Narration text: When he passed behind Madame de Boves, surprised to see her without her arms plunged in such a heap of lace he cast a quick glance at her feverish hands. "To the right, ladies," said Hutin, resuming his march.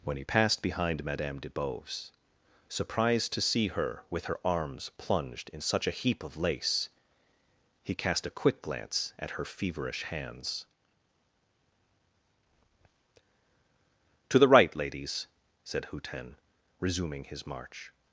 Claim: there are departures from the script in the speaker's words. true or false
true